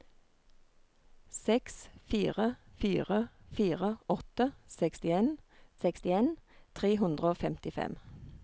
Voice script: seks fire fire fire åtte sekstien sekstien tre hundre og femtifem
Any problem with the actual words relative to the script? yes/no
no